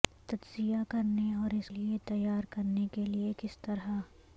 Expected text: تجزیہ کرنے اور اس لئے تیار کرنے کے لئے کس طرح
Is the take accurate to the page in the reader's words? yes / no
yes